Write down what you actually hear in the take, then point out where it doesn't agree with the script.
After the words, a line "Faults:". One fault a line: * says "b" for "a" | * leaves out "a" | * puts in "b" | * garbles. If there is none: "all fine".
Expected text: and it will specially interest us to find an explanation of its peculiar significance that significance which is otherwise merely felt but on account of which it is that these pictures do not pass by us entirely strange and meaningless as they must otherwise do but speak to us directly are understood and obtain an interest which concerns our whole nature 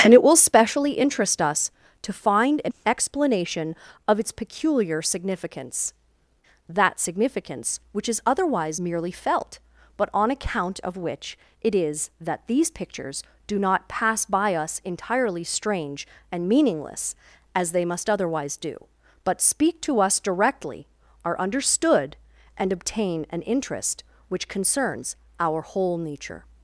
and it will specially interest us to find an explanation of its peculiar significance that significance which is otherwise merely felt but on account of which it is that these pictures do not pass by us entirely strange and meaningless as they must otherwise do but speak to us directly are understood and obtain an interest which concerns our whole nature
Faults:
all fine